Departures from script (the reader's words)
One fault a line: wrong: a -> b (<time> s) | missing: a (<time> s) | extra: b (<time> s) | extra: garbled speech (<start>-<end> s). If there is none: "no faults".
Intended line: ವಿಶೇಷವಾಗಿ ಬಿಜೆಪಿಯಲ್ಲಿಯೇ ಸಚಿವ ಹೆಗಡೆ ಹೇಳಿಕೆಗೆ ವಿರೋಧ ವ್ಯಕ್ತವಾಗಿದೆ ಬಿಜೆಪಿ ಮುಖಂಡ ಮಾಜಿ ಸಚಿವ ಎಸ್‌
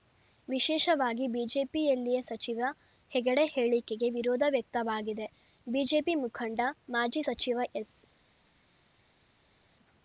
no faults